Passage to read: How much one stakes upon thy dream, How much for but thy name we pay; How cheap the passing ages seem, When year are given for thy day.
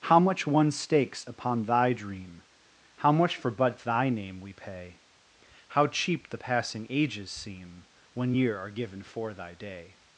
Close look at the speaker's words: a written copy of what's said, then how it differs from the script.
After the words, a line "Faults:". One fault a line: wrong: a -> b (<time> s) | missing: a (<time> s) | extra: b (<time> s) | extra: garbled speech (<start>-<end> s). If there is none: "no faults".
How much one stakes upon thy dream, How much for but thy name we pay; How cheap the passing ages seem, When year are given for thy day.
Faults:
no faults